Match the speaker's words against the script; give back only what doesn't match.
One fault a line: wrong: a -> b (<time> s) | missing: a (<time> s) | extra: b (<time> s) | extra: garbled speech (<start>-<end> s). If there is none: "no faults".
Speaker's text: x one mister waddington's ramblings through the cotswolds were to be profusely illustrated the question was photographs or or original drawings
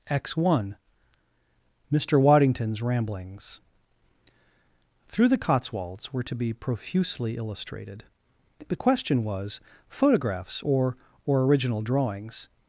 no faults